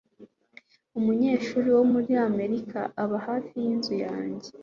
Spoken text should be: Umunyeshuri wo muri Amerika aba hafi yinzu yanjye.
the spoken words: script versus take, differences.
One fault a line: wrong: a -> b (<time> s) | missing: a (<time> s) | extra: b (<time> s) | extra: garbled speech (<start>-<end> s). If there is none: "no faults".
no faults